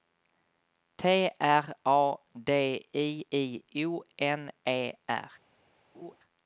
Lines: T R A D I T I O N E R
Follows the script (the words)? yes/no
no